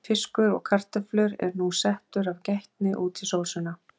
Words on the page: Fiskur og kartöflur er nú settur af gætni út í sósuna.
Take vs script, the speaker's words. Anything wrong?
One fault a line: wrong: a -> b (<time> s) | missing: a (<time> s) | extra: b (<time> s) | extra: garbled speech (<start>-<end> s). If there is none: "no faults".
no faults